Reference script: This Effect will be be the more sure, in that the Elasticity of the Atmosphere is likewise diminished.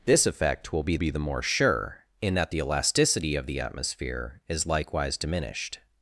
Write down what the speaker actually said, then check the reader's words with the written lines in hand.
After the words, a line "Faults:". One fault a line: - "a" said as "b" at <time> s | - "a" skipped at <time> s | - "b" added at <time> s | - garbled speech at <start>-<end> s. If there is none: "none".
This Effect will be be the more sure, in that the Elasticity of the Atmosphere is likewise diminished.
Faults:
none